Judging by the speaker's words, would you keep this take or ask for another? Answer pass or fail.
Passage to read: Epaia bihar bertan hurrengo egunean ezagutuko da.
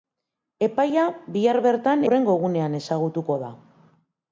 pass